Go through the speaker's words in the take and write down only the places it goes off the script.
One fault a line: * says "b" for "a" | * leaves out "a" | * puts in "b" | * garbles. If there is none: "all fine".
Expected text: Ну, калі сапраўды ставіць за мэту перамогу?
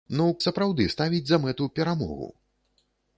* leaves out "калі"